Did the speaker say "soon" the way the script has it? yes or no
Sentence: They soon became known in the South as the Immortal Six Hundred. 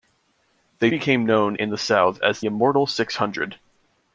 no